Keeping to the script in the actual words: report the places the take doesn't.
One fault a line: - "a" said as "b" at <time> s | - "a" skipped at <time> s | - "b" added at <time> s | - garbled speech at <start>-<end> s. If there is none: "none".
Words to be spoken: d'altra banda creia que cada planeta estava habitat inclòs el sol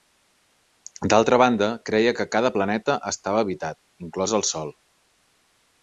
none